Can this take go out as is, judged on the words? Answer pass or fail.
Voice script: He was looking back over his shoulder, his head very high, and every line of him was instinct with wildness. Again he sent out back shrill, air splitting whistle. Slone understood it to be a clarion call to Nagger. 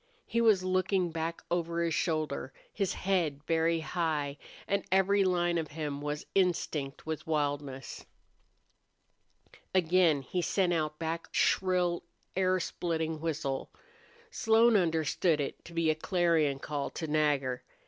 pass